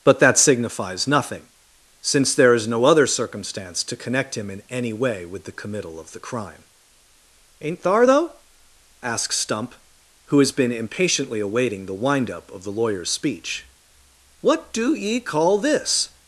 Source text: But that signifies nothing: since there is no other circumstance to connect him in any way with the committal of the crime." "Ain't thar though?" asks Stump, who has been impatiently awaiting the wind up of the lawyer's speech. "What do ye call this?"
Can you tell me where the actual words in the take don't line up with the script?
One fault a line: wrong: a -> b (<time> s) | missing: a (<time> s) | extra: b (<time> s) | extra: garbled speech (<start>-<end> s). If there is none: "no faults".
no faults